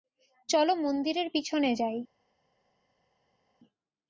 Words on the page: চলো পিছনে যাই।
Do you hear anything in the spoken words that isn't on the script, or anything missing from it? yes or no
yes